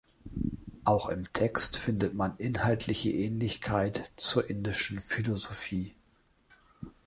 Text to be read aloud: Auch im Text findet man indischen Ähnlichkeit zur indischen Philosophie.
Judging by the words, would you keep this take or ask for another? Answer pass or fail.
fail